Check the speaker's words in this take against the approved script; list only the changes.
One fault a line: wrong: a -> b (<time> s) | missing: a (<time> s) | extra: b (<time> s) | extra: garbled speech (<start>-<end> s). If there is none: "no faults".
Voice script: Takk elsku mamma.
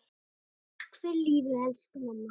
extra: fyrir lífið (1.0 s)